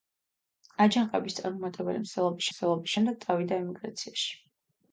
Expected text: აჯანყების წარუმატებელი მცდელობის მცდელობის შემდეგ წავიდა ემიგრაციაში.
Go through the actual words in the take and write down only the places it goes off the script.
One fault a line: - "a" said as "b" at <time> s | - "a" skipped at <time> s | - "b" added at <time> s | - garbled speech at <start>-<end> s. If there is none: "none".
none